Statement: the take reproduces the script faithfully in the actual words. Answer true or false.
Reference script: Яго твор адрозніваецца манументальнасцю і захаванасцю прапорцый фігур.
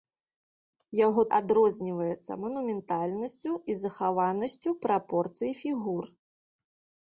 false